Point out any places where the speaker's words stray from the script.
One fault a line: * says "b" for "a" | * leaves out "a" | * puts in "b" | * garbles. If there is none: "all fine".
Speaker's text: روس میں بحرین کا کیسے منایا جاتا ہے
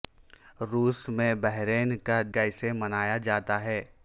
all fine